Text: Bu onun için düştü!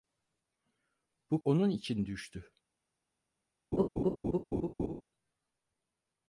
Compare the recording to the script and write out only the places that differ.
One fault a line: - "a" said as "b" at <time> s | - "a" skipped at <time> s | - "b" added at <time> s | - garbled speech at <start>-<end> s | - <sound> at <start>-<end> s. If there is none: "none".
- laugh at 3.7-5.0 s